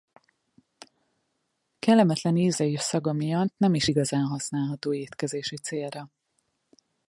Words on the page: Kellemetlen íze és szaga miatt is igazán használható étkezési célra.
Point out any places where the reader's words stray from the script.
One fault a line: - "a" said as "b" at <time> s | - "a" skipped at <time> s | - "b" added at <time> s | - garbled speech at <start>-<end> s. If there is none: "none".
- "nem" added at 3.6 s